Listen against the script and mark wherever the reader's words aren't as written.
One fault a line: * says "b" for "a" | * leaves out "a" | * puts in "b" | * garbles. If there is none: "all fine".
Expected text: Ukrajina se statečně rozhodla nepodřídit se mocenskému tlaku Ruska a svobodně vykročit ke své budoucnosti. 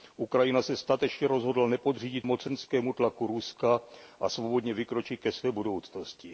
* leaves out "se"